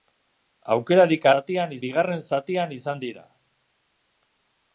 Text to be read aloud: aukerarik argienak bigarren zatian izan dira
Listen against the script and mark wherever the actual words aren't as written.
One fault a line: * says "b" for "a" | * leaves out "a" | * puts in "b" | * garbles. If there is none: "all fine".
* says "zatian" for "argienak"